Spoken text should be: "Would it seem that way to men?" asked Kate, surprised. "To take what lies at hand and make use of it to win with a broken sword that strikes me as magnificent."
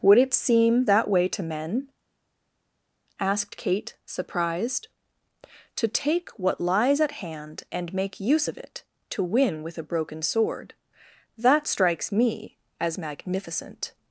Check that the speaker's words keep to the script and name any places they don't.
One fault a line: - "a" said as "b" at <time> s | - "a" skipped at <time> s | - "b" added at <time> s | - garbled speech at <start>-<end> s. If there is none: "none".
none